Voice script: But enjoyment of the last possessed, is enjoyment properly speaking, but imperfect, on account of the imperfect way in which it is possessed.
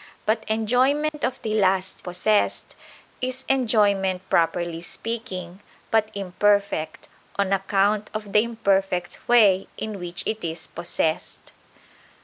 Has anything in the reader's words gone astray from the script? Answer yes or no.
no